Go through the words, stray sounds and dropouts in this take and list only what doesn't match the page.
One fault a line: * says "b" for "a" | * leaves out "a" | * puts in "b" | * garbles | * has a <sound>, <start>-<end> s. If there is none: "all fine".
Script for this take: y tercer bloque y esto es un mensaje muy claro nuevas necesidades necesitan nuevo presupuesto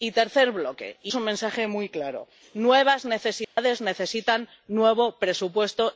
* leaves out "esto"
* has a dropout, 3.4-3.6 s